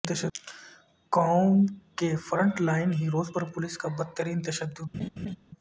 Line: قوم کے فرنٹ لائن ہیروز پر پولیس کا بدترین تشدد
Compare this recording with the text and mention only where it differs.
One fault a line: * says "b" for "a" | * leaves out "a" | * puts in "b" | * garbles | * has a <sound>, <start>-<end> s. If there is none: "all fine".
* has a laugh, 4.9-5.4 s